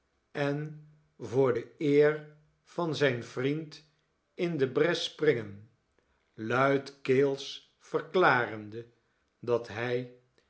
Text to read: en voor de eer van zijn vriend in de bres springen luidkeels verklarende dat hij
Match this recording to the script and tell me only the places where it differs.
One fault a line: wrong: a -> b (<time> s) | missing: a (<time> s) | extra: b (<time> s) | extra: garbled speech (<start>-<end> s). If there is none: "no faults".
no faults